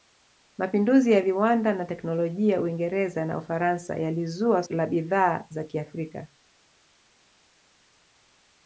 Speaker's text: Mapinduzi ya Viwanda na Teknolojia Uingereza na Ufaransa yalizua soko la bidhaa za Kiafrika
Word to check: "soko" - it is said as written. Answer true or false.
false